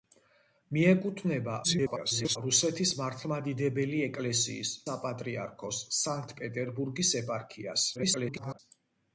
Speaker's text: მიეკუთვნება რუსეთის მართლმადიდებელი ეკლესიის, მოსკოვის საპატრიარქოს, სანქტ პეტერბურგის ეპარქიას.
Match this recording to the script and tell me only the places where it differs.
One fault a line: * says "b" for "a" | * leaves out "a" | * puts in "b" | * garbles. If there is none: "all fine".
* garbles
* leaves out "მოსკოვის"
* garbles